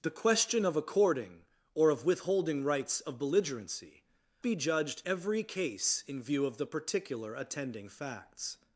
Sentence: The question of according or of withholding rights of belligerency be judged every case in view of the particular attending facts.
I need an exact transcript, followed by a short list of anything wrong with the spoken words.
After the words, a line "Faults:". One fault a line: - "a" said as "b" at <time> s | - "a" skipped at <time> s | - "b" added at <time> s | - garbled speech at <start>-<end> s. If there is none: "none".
The question of according or of withholding rights of belligerency be judged every case in view of the particular attending facts.
Faults:
none